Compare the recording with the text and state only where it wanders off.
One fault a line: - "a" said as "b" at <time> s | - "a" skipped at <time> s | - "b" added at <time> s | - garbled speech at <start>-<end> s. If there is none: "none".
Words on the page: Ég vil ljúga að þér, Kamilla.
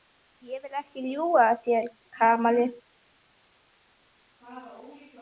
- "ekki" added at 0.8 s